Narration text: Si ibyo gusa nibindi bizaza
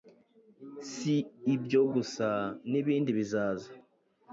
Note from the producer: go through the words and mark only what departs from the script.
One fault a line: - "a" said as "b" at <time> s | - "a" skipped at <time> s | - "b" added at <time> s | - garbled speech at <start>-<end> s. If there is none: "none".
none